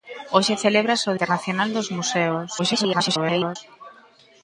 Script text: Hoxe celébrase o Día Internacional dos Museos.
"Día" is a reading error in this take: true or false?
true